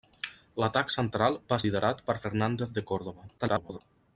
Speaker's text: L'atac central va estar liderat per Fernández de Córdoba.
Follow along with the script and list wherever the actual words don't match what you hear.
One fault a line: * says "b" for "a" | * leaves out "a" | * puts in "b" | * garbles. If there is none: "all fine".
* leaves out "estar"
* garbles